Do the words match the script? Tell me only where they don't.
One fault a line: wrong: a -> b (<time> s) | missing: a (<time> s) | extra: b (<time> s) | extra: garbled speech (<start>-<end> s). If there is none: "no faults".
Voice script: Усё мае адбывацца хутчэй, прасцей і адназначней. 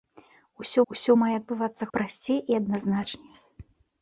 extra: усё (0.9 s)
missing: хутчэй (1.9 s)